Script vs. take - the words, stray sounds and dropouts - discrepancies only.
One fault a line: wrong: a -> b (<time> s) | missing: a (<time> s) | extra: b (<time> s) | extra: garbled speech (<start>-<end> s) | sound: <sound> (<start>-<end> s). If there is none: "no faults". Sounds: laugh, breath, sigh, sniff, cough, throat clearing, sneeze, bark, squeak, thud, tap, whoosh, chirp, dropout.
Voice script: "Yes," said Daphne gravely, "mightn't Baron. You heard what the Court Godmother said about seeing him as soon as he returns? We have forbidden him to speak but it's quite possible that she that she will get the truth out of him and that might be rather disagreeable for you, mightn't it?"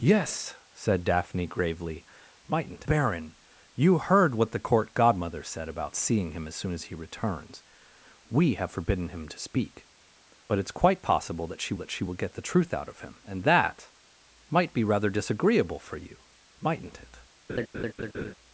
sound: laugh (17.5-18.3 s)